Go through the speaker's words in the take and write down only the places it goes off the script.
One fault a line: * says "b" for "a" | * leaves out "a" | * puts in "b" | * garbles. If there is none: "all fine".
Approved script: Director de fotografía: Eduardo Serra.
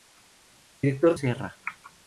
* leaves out "de fotografía Eduardo"